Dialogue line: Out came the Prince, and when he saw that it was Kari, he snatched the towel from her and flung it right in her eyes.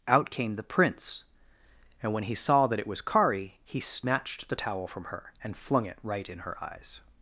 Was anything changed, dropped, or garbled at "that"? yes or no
no